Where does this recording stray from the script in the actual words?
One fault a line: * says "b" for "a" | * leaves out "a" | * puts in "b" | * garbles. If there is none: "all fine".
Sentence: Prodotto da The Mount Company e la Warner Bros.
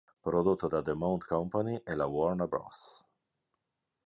all fine